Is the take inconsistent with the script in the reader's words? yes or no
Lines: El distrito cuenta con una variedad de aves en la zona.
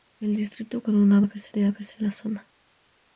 yes